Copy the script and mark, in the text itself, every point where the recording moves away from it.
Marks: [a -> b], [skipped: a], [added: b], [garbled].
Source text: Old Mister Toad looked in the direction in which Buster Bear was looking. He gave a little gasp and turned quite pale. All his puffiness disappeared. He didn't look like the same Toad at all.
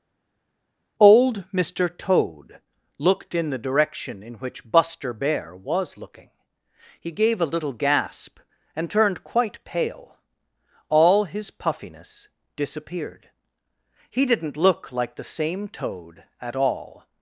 Old Mister Toad looked in the direction in which Buster Bear was looking. He gave a little gasp and turned quite pale. All his puffiness disappeared. He didn't look like the same Toad at all.